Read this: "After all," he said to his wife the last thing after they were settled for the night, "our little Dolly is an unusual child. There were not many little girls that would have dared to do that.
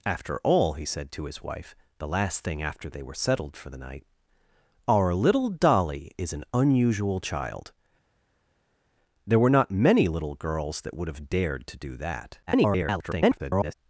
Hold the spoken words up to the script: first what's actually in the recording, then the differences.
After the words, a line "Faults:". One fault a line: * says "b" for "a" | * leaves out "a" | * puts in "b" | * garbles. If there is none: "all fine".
"After all," he said to his wife the last thing after they were settled for the night, "our little Dolly is an unusual child. There were not many little girls that would have dared to do that. [garbled]
Faults:
* garbles